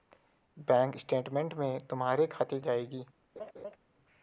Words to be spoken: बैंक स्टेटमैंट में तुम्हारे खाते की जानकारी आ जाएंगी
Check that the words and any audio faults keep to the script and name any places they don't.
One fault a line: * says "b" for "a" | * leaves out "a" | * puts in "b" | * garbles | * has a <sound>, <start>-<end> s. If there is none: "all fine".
* leaves out "की जानकारी आ"
* has a laugh, 3.4-3.8 s